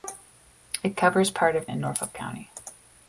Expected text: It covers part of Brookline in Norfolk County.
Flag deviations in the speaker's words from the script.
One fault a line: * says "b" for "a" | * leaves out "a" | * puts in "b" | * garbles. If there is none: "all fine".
* leaves out "Brookline"